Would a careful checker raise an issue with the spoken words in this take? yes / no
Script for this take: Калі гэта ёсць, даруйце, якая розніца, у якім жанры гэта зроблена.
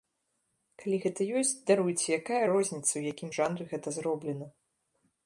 no